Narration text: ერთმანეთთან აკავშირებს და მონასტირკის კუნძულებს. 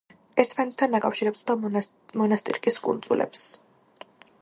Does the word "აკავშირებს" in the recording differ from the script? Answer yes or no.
no